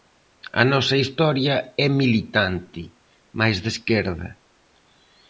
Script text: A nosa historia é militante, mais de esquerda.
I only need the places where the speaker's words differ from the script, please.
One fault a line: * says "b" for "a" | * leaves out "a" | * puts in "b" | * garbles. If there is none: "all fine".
all fine